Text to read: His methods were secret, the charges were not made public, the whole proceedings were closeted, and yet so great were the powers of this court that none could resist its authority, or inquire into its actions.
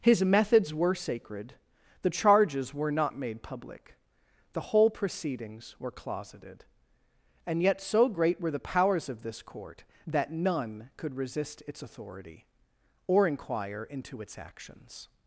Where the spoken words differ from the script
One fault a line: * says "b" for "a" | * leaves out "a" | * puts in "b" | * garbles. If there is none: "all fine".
* says "sacred" for "secret"